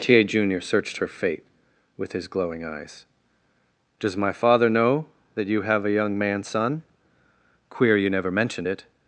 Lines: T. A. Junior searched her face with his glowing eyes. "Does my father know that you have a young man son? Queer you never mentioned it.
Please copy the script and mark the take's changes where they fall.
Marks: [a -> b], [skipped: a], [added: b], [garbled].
T. A. Junior searched her [face -> fate] with his glowing eyes. "Does my father know that you have a young man son? Queer you never mentioned it.